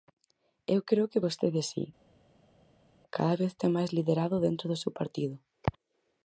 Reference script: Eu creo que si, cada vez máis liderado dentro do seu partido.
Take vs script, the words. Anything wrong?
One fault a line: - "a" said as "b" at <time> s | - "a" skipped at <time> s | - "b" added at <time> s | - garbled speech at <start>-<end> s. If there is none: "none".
- "vostede" added at 1.2 s
- "ten" added at 3.6 s